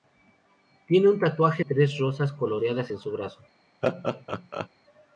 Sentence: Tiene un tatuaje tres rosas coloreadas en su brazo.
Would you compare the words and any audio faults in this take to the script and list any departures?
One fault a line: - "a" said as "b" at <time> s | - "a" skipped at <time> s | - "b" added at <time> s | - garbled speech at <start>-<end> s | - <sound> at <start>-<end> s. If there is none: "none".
- laugh at 3.8-4.7 s